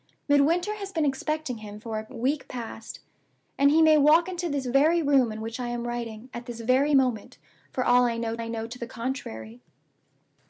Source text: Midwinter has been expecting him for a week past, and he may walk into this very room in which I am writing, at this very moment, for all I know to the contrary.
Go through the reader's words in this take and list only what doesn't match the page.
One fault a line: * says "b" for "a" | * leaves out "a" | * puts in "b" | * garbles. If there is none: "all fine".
* puts in "I know"